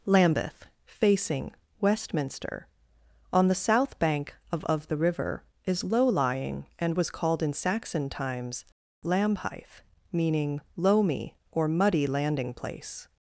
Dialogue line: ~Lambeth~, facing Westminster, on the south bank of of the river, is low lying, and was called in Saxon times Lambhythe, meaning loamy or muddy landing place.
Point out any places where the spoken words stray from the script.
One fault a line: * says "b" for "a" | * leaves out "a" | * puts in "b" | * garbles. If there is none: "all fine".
all fine